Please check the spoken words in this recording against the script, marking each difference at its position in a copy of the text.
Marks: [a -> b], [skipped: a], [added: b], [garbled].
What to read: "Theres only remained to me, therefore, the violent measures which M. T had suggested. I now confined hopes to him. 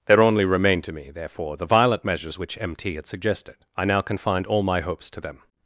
["Theres -> There] only remained to me, therefore, the violent measures which M. T had suggested. I now confined [added: all my] hopes to [him. -> them]